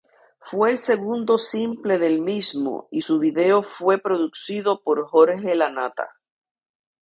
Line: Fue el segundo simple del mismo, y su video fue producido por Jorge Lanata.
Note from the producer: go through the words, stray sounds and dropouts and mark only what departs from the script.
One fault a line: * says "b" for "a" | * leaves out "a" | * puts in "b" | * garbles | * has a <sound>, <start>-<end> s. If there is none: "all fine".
all fine